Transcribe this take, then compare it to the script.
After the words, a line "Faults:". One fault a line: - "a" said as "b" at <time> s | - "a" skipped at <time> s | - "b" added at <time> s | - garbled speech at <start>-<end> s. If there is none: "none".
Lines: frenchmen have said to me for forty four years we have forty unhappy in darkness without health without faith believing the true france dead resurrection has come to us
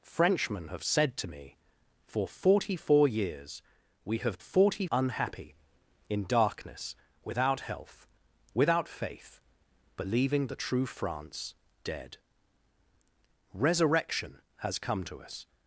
frenchmen have said to me for forty four years we have forty unhappy in darkness without health without faith believing the true france dead resurrection has come to us
Faults:
none